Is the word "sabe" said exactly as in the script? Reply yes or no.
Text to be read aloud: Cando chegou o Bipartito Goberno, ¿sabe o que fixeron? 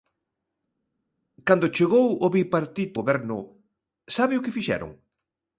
yes